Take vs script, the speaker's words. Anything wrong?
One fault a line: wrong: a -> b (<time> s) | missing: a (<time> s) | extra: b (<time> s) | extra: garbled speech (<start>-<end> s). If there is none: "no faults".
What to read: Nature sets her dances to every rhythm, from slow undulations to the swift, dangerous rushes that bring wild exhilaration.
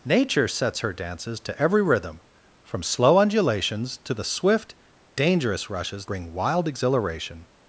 missing: that (6.1 s)